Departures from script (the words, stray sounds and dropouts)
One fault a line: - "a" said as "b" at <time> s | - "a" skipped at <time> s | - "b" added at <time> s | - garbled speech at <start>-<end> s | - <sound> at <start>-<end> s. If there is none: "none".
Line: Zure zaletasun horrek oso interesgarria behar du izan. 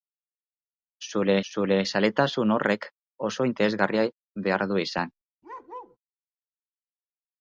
- "zure" added at 1.5 s
- bark at 5.4-6.0 s